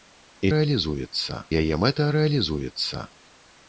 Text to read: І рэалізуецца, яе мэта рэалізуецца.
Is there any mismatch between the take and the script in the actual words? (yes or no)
no